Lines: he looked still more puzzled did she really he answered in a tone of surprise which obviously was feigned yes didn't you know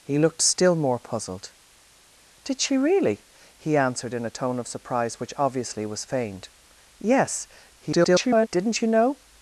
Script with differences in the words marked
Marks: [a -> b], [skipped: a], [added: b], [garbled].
he looked still more puzzled did she really he answered in a tone of surprise which obviously was feigned yes [garbled] didn't you know